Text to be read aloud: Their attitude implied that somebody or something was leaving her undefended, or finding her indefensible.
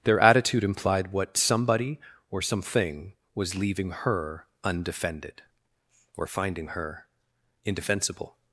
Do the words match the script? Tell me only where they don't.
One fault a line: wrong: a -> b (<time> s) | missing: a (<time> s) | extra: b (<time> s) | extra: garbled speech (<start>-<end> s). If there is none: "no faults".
wrong: that -> what (1.1 s)